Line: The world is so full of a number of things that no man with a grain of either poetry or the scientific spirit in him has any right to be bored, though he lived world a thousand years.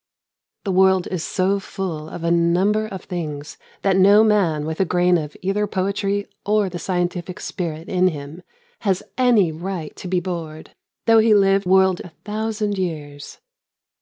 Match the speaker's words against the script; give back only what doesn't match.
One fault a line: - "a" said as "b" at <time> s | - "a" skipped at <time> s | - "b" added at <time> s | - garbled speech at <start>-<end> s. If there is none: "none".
none